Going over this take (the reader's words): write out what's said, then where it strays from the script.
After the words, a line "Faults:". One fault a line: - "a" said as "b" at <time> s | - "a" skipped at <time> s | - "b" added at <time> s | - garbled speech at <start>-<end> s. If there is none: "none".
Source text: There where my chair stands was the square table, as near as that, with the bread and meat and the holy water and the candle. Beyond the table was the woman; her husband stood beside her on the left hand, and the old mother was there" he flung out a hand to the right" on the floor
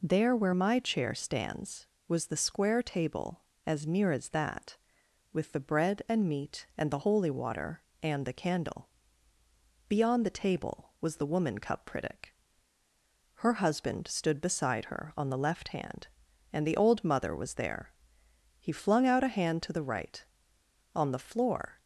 There where my chair stands was the square table, as near as that, with the bread and meat and the holy water and the candle. Beyond the table was the woman; cup critic her husband stood beside her on the left hand, and the old mother was there" he flung out a hand to the right" on the floor
Faults:
- "cup critic" added at 11.6 s